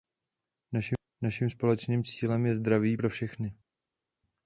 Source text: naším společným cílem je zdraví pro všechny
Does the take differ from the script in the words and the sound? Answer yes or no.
no